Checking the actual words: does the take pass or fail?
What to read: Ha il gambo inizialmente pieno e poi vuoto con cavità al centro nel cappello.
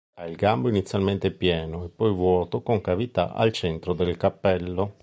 fail